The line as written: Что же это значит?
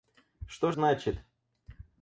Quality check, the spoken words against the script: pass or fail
fail